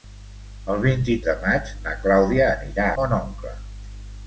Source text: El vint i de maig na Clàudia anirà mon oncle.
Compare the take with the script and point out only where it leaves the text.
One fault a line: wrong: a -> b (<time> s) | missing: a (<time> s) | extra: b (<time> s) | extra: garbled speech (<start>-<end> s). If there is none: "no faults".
no faults